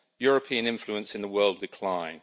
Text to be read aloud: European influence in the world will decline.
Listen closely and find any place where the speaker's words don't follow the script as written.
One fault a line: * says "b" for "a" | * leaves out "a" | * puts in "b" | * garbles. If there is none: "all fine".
* leaves out "will"